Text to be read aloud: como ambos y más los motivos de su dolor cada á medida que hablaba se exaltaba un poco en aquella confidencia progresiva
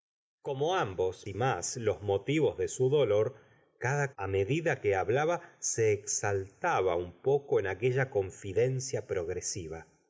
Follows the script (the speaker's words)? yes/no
yes